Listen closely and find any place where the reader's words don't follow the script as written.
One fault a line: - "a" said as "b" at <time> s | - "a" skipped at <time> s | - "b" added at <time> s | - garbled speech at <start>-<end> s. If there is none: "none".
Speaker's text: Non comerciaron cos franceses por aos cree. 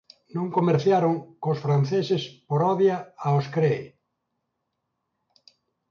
- "odia" added at 2.7 s